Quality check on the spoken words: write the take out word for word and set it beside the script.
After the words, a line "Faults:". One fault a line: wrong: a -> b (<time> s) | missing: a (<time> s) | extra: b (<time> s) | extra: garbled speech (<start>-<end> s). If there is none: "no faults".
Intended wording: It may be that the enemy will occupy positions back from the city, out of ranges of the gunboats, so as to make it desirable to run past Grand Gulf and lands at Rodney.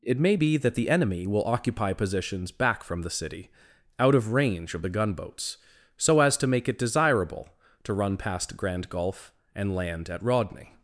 It may be that the enemy will occupy positions back from the city, out of range of the gunboats, so as to make it desirable to run past Grand Gulf and land at Rodney.
Faults:
wrong: ranges -> range (4.3 s)
wrong: lands -> land (9.7 s)